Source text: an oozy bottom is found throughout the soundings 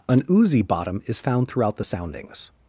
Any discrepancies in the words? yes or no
no